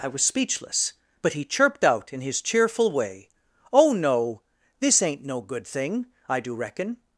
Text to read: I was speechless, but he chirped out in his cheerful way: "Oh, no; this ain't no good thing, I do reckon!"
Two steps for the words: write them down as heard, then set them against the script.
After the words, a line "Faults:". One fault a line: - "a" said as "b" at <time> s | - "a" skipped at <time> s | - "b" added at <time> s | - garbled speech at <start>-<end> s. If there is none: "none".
I was speechless, but he chirped out in his cheerful way: "Oh, no; this ain't no good thing, I do reckon!"
Faults:
none